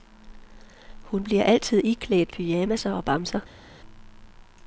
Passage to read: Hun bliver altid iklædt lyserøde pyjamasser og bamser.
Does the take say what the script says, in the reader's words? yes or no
no